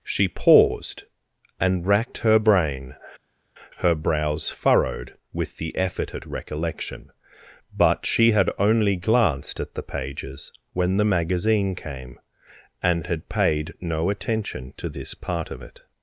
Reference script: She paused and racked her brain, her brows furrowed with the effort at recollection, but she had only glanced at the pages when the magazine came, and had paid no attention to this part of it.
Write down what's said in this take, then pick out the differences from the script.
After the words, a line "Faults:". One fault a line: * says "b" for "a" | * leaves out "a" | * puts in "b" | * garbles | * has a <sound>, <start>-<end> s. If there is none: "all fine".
She paused and racked her brain, her brows furrowed with the effort at recollection, but she had only glanced at the pages when the magazine came, and had paid no attention to this part of it.
Faults:
all fine